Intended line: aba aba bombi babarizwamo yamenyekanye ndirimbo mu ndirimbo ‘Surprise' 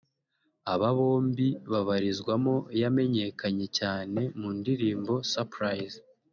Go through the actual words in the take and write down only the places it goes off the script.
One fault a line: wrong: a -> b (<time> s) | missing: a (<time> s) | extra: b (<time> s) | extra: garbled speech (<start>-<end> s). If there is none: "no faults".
missing: aba (0.9 s)
wrong: ndirimbo -> cyane (3.8 s)